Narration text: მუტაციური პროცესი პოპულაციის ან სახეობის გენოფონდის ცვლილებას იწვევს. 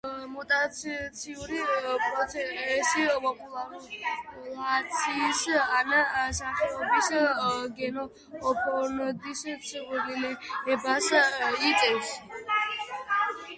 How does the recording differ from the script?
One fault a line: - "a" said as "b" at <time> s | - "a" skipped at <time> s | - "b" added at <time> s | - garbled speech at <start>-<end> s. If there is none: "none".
none